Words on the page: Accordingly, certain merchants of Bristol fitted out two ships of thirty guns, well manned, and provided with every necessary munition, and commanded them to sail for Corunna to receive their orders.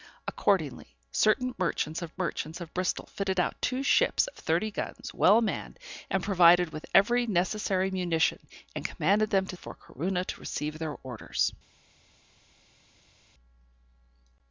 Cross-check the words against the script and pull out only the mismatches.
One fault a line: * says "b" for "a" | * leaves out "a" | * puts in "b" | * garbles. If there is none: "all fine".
* puts in "merchants of"
* leaves out "sail"